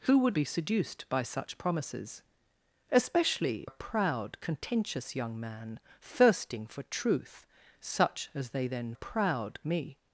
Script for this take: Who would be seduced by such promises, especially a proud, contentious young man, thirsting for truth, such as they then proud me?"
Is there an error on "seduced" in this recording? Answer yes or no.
no